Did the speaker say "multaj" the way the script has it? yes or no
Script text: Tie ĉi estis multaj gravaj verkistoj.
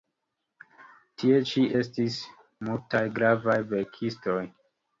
yes